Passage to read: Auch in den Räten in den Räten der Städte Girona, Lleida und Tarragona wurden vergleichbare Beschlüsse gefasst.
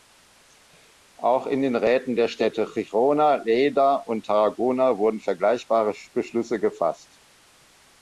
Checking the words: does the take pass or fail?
fail